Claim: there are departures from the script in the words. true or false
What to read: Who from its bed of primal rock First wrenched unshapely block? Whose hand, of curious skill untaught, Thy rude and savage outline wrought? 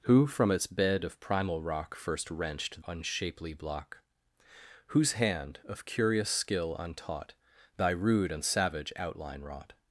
false